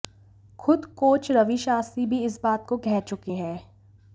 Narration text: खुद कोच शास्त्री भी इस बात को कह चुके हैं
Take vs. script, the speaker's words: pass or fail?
fail